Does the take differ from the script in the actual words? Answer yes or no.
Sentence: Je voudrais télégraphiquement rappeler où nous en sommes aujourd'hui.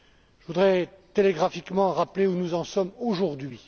no